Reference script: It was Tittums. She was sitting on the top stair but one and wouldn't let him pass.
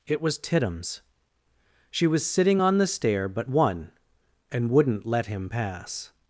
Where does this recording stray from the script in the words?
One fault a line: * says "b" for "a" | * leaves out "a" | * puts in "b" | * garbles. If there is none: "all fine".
* leaves out "top"